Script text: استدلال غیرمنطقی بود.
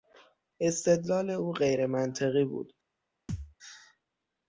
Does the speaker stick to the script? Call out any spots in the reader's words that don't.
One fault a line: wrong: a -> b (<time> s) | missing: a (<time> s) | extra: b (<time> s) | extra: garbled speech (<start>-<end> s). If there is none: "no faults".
extra: او (1.3 s)